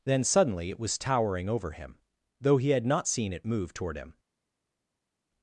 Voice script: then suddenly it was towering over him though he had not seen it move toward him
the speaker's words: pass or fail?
pass